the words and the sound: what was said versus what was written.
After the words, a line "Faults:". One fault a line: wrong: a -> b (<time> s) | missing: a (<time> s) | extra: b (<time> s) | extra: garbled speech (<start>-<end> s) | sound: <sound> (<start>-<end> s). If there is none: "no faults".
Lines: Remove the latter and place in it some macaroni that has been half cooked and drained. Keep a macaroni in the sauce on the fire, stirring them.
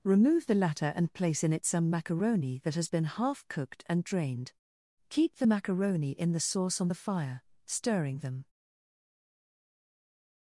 Remove the latter and place in it some macaroni that has been half cooked and drained. Keep the macaroni in the sauce on the fire, stirring them.
Faults:
wrong: a -> the (5.4 s)